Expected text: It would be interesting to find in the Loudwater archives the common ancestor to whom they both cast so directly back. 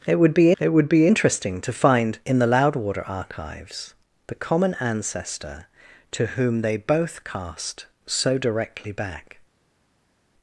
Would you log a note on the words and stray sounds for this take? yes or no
yes